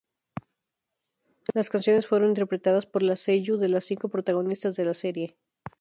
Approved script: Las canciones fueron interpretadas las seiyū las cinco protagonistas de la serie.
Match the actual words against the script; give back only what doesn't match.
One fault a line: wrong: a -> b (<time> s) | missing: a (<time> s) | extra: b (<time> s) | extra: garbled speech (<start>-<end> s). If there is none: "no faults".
extra: por (2.9 s)
extra: de (3.6 s)